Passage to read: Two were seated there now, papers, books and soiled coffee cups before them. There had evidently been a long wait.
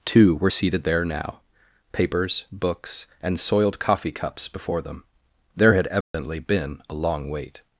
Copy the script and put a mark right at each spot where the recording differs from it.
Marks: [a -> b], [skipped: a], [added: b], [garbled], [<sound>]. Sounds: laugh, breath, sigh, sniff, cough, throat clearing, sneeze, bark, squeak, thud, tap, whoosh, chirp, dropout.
Two were seated there now, papers, books and soiled coffee cups before them. There had evidently [dropout] been a long wait.